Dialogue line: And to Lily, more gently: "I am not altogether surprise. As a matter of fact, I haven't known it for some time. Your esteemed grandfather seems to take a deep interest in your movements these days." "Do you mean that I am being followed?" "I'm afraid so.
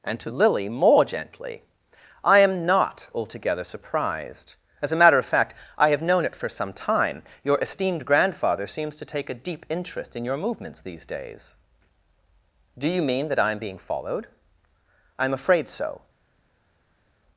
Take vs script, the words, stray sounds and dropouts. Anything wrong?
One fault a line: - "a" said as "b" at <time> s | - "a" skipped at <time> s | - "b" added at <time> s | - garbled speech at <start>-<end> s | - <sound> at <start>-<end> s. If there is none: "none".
- "surprise" said as "surprised" at 3.6 s
- "haven't" said as "have" at 5.9 s